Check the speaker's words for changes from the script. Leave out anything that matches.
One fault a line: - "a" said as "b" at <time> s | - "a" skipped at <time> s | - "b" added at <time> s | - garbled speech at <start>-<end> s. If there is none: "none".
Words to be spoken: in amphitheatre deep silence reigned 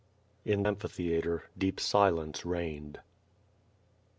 none